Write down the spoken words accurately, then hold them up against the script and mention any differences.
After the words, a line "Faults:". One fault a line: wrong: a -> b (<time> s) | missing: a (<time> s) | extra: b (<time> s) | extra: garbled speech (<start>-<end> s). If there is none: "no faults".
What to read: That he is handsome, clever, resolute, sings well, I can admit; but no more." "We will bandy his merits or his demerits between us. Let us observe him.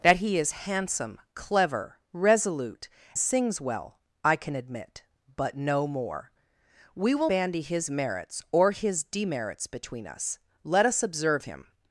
That he is handsome, clever, resolute, sings well, I can admit; but no more." "We will bandy his merits or his demerits between us. Let us observe him.
Faults:
no faults